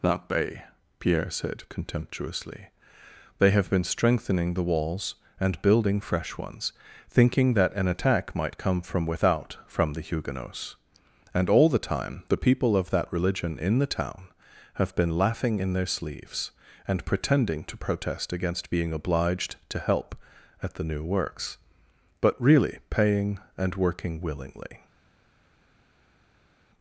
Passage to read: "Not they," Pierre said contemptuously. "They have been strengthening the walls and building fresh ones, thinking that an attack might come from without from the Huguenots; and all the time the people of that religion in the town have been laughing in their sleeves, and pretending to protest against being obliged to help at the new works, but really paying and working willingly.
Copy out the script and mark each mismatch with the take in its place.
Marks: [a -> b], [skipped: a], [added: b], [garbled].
["Not they," -> That bay] Pierre said contemptuously. "They have been strengthening the walls and building fresh ones, thinking that an attack might come from without from the Huguenots; and all the time the people of that religion in the town have been laughing in their sleeves, and pretending to protest against being obliged to help at the new works, but really paying and working willingly.